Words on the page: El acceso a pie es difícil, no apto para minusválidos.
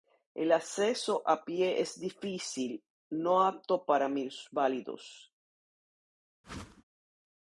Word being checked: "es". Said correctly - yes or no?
yes